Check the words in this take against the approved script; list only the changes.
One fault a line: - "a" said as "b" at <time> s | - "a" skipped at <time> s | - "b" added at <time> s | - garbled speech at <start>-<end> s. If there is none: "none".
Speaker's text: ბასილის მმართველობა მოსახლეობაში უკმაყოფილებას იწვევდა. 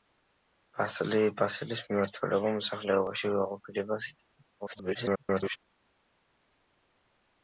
- garbled speech at 4.6-5.6 s